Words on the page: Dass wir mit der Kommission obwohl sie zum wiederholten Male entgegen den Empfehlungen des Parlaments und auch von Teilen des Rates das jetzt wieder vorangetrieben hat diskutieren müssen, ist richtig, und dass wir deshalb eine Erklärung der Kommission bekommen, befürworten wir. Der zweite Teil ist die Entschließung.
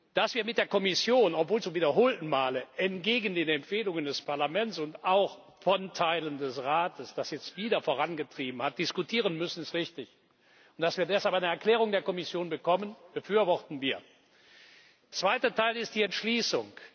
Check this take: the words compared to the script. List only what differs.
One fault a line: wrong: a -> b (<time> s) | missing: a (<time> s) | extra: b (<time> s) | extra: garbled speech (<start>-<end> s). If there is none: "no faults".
missing: sie (1.6 s)
missing: Der (14.0 s)